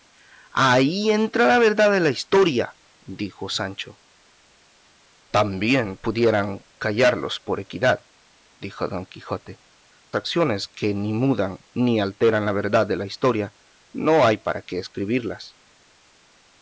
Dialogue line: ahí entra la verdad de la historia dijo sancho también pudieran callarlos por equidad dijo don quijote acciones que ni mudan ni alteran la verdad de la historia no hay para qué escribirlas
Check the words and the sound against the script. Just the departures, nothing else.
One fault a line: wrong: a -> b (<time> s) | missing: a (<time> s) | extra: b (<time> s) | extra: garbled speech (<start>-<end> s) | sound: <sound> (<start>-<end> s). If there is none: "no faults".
no faults